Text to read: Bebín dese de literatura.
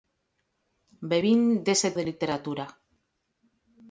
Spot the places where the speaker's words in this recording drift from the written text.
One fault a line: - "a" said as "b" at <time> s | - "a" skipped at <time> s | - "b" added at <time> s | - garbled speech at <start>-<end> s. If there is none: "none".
none